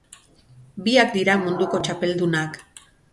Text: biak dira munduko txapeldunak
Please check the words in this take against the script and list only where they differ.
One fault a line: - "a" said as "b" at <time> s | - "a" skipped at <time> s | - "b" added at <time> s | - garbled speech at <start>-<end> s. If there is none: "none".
none